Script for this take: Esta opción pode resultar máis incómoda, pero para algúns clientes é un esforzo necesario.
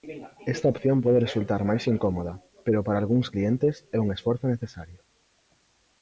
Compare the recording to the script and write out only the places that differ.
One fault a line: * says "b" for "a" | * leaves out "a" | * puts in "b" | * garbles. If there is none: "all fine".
all fine